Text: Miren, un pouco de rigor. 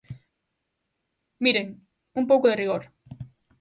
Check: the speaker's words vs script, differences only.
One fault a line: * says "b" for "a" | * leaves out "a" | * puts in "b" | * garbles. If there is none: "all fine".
all fine